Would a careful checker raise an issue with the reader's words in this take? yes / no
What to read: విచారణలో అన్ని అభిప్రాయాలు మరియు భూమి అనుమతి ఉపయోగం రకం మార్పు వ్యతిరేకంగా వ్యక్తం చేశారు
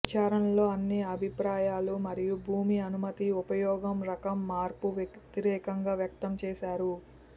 no